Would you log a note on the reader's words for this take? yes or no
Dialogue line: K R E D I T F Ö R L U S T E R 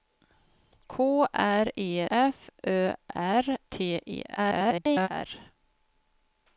yes